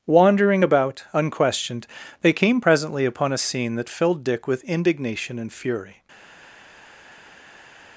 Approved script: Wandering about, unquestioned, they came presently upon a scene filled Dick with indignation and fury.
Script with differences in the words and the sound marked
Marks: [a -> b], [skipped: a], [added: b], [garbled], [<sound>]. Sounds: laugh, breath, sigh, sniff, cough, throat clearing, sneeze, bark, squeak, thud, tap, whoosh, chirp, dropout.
Wandering about, unquestioned, they came presently upon a scene [added: that] filled Dick with indignation and fury.